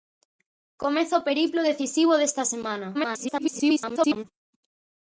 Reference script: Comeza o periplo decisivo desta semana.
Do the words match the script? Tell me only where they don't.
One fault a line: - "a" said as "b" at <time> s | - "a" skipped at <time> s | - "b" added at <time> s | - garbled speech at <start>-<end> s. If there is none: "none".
- garbled speech at 2.9-4.2 s